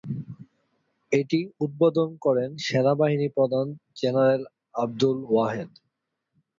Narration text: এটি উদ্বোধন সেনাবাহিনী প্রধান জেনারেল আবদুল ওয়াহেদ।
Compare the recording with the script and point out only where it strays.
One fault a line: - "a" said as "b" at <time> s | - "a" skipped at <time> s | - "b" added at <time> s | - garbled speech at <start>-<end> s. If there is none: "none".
- "করেন" added at 2.2 s